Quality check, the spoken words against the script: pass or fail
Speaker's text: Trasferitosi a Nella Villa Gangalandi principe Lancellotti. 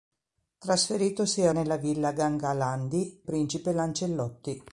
pass